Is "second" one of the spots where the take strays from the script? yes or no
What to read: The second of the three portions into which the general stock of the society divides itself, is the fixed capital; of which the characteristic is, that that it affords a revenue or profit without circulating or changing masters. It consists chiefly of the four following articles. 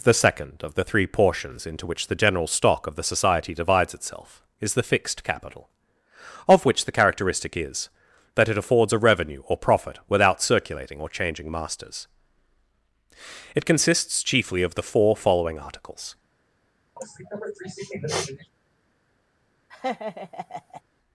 no